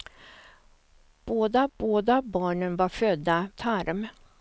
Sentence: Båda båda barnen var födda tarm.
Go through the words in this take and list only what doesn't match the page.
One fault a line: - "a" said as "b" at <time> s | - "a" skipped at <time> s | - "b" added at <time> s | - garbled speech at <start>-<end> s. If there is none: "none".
none